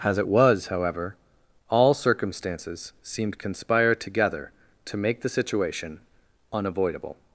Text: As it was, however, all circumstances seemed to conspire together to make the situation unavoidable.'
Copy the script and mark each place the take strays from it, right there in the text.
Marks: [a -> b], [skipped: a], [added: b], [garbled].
As it was, however, all circumstances seemed [skipped: to] conspire together to make the situation unavoidable.'